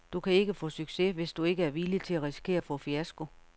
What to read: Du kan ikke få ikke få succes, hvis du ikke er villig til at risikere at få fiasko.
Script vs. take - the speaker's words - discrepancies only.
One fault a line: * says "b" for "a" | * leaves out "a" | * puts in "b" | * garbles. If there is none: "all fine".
* leaves out "ikke få"